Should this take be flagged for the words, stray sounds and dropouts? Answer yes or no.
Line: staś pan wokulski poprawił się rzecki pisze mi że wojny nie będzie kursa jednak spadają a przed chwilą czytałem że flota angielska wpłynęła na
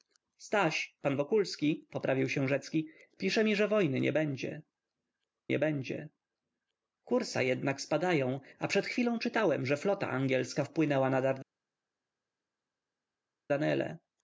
yes